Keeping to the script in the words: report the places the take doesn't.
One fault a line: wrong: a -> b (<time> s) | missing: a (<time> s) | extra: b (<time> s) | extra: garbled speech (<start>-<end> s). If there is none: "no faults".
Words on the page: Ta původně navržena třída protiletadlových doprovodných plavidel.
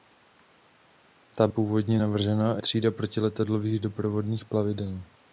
no faults